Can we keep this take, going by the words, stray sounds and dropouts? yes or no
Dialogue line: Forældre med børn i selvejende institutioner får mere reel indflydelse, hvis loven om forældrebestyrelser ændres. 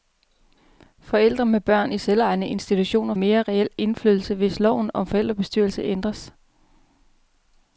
no